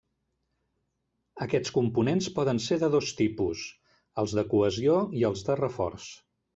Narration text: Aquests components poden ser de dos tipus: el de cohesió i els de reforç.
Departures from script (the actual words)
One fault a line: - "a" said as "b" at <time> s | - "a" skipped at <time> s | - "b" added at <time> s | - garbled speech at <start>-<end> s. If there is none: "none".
- "el" said as "els" at 4.2 s